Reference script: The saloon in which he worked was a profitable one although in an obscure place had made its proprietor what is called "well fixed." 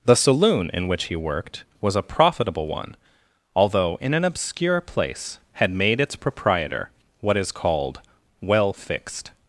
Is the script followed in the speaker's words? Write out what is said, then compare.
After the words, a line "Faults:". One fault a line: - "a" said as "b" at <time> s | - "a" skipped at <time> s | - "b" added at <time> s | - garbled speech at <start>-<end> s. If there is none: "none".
The saloon in which he worked was a profitable one although in an obscure place had made its proprietor what is called "well fixed."
Faults:
none